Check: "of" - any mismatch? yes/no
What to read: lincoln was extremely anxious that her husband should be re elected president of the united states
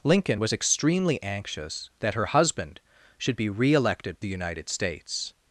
yes